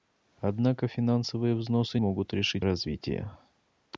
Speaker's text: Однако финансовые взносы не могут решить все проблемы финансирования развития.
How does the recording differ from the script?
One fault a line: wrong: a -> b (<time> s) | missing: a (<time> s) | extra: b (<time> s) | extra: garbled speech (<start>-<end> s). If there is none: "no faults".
missing: не (2.0 s)
missing: все проблемы финансирования (2.7 s)